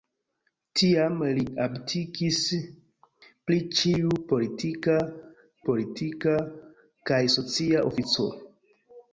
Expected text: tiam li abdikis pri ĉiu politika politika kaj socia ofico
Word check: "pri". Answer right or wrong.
right